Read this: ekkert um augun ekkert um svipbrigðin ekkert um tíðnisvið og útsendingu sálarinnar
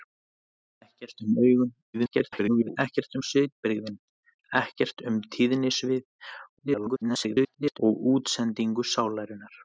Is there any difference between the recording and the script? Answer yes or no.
yes